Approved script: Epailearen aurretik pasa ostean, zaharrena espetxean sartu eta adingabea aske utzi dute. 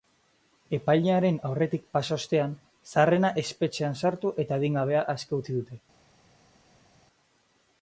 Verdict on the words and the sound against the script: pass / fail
pass